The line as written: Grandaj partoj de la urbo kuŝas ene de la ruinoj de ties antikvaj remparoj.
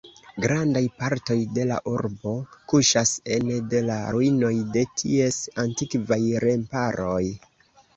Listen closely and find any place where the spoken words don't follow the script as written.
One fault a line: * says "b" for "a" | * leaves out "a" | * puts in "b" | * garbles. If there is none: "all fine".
all fine